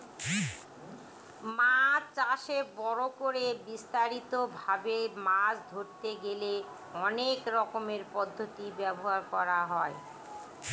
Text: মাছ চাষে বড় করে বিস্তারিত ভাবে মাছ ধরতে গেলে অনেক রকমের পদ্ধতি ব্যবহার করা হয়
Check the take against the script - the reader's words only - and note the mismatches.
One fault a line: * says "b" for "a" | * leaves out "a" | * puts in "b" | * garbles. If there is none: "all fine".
all fine